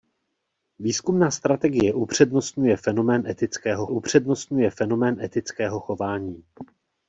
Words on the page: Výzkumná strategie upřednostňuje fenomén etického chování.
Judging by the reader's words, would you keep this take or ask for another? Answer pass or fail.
fail